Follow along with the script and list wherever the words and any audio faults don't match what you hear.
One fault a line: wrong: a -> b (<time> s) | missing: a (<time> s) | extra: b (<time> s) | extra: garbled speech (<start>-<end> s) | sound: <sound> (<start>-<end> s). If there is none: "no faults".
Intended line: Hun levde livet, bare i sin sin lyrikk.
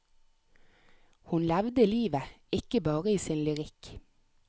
extra: ikke (2.5 s)
missing: sin (3.4 s)